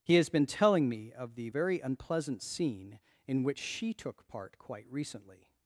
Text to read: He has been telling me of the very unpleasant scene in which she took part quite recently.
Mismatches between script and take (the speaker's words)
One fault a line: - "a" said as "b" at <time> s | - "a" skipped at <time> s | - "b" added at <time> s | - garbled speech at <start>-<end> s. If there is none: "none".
none